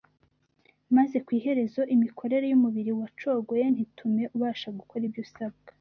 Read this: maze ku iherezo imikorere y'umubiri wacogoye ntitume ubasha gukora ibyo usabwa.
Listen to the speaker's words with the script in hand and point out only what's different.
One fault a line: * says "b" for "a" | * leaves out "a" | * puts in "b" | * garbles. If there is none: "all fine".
all fine